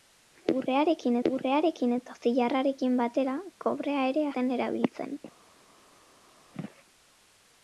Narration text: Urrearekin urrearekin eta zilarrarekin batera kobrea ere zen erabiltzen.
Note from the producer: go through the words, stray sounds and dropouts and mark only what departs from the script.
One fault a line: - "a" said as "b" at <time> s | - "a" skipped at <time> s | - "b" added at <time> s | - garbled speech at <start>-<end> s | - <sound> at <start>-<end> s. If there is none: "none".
none